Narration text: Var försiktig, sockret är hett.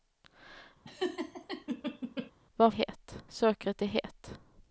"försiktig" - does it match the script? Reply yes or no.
no